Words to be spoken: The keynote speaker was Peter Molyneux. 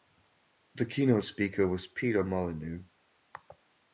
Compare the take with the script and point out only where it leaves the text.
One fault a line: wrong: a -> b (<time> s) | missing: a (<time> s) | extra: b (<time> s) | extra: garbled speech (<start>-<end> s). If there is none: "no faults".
no faults